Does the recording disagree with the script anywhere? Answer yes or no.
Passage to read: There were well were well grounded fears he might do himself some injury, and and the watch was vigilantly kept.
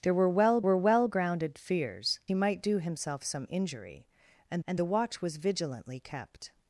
no